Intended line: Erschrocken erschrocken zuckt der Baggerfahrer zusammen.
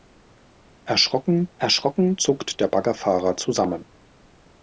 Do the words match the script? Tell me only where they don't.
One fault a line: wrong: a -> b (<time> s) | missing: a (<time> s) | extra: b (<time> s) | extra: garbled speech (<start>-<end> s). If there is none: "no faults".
no faults